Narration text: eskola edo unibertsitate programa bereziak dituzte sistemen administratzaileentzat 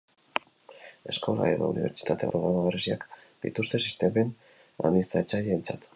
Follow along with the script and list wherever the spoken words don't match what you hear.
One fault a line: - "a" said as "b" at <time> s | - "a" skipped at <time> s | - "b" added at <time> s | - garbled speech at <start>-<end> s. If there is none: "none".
none